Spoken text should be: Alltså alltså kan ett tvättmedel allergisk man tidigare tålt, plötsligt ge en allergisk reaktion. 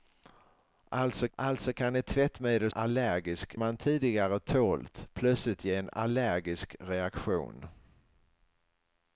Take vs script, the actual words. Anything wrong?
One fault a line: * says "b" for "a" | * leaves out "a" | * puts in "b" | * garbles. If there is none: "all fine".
all fine